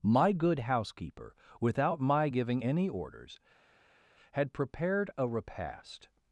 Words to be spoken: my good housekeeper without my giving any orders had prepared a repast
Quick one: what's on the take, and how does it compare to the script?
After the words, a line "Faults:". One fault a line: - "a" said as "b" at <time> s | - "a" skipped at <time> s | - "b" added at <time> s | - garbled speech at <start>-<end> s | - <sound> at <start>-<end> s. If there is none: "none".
my good housekeeper without my giving any orders had prepared a repast
Faults:
none